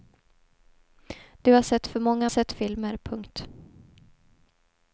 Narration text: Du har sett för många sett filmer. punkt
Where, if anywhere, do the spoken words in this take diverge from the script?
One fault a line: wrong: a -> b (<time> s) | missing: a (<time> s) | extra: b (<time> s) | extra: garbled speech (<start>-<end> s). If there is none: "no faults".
no faults